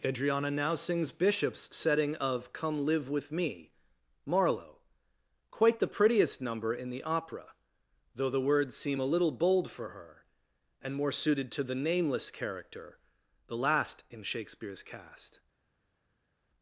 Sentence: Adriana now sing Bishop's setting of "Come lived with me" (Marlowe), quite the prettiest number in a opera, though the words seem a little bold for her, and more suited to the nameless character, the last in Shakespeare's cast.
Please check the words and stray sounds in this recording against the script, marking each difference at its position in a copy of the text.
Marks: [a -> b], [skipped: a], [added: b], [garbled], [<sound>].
Adriana now [sing -> sings] Bishop's setting of "Come [lived -> live] with me" (Marlowe), quite the prettiest number in [a -> the] opera, though the words seem a little bold for her, and more suited to the nameless character, the last in Shakespeare's cast.